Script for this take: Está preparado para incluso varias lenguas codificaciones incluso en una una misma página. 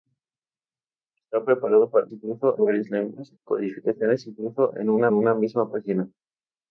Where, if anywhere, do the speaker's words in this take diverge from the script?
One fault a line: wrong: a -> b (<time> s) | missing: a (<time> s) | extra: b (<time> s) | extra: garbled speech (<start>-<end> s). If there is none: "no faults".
no faults